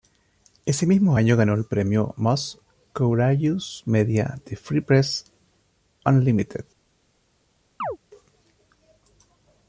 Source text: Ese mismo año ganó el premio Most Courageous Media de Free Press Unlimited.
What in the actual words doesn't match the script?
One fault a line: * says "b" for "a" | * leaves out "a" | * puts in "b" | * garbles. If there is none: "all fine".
all fine